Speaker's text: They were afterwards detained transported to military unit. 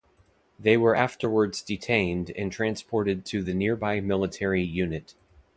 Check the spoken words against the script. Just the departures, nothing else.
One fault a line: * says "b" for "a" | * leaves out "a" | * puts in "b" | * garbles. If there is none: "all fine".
* puts in "and"
* puts in "the nearby"